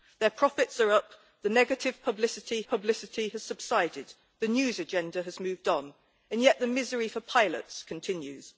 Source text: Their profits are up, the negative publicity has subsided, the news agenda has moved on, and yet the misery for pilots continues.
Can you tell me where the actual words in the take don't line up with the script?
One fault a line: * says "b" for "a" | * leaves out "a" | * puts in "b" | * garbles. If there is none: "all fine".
* puts in "publicity"